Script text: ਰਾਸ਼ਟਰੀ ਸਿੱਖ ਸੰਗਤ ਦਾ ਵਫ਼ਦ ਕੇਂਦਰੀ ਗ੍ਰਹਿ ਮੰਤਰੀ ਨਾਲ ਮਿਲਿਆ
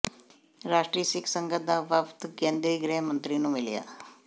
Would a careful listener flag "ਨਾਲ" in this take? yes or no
yes